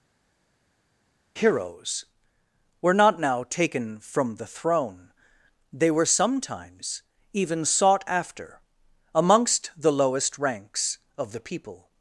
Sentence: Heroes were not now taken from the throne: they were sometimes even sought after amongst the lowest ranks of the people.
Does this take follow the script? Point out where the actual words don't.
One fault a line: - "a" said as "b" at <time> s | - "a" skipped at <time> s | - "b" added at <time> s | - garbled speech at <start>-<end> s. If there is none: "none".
none